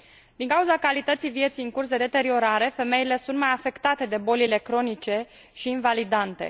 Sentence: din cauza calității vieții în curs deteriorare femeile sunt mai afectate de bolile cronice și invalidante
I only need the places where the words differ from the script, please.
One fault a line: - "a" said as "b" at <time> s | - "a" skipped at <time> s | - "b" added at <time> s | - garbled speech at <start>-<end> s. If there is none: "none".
- "de" added at 1.9 s